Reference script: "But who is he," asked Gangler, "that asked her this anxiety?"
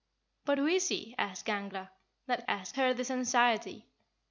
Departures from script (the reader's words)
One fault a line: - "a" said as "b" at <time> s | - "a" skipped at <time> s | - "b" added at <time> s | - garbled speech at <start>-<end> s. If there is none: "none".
none